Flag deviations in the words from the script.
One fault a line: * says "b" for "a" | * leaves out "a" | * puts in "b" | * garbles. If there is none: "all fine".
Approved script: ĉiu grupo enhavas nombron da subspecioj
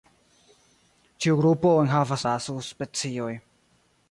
* leaves out "nombron"